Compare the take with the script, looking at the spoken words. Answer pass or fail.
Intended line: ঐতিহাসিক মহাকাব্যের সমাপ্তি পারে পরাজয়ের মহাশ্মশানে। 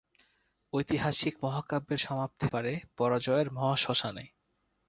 pass